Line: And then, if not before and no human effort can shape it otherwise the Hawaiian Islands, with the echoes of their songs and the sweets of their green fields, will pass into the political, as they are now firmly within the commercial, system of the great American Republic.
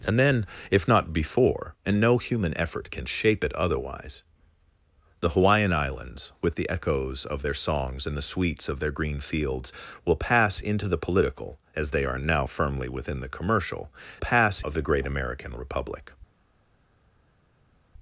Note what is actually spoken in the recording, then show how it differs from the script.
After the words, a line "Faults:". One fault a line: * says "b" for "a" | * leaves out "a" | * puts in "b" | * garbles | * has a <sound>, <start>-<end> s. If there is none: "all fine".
And then, if not before and no human effort can shape it otherwise the Hawaiian Islands, with the echoes of their songs and the sweets of their green fields, will pass into the political, as they are now firmly within the commercial, pass of the great American Republic.
Faults:
* says "pass" for "system"